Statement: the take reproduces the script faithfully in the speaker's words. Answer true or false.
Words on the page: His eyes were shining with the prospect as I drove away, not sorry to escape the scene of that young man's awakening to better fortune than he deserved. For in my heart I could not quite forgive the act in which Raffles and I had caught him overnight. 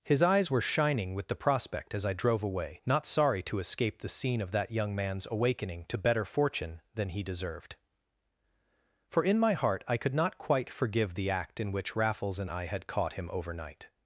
true